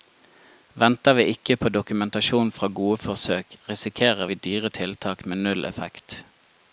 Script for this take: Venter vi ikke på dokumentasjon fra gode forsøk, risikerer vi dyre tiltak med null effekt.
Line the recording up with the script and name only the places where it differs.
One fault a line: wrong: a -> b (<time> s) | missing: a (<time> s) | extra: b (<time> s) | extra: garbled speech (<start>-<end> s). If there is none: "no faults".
no faults